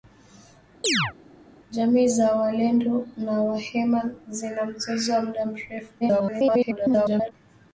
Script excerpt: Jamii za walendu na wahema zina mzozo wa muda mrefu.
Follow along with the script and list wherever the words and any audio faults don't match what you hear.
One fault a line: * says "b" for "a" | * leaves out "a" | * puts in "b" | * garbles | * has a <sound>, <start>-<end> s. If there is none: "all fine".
* has a chirp, 0.8-1.1 s
* garbles